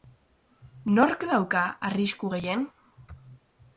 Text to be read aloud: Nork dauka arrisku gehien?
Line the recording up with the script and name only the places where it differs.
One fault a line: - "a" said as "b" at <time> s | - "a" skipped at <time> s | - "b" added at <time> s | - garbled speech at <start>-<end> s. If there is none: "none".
none